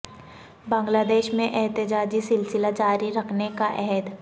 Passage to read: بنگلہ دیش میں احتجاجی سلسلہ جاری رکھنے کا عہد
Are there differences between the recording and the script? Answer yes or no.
no